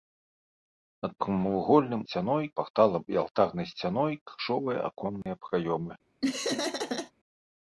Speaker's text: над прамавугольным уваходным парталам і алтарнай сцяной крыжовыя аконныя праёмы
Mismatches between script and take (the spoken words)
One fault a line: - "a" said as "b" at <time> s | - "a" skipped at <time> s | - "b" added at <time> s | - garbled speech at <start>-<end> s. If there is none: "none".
- "уваходным" said as "сцяной" at 2.0 s